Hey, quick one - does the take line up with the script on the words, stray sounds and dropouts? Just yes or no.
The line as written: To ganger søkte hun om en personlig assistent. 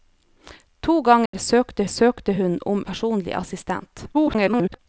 no